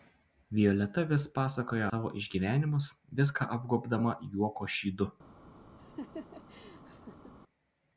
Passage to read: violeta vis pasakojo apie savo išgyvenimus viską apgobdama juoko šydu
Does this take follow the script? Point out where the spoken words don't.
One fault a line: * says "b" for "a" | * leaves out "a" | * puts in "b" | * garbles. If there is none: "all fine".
* leaves out "apie"